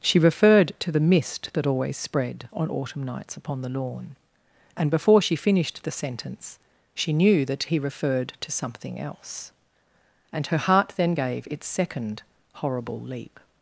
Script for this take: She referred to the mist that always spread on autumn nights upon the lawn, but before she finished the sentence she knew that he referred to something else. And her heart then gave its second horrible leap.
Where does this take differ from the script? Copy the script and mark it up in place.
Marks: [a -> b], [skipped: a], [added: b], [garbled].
She referred to the mist that always spread on autumn nights upon the lawn, [but -> and] before she finished the sentence she knew that he referred to something else. And her heart then gave its second horrible leap.